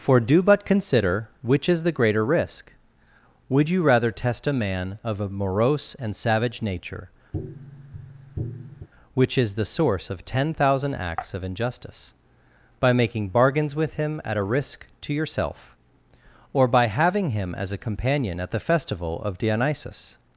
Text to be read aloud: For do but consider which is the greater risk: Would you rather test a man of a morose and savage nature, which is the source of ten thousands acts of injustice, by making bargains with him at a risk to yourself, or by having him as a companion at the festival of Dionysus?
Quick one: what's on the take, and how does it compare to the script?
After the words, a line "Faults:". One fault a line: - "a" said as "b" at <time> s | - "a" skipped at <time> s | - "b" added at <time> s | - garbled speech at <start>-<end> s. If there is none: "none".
For do but consider which is the greater risk: Would you rather test a man of a morose and savage nature, which is the source of ten thousand acts of injustice, by making bargains with him at a risk to yourself, or by having him as a companion at the festival of Dionysus?
Faults:
- "thousands" said as "thousand" at 10.5 s